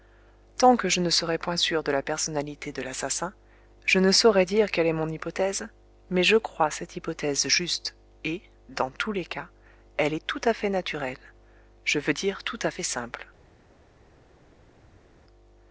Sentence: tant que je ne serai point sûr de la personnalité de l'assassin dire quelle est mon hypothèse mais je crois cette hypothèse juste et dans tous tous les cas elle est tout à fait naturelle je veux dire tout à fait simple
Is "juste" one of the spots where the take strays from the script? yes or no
no